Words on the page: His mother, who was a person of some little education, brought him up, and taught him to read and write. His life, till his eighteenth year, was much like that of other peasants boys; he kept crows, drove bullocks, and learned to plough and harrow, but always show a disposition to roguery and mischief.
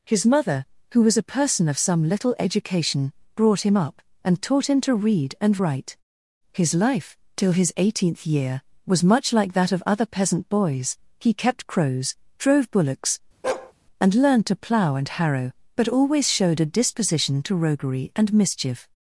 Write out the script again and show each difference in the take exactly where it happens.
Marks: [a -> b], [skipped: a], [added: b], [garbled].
His mother, who was a person of some little education, brought him up, and taught him to read and write. His life, till his eighteenth year, was much like that of other [peasants -> peasant] boys; he kept crows, drove bullocks, and learned to plough and harrow, but always [show -> showed] a disposition to roguery and mischief.